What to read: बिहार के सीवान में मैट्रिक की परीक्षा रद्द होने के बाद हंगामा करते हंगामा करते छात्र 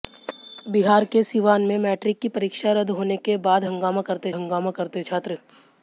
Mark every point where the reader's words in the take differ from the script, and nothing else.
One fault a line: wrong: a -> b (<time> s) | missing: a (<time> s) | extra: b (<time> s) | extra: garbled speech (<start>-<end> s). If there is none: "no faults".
no faults